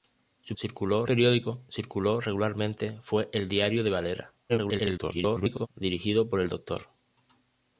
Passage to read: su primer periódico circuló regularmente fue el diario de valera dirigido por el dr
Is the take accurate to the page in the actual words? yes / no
no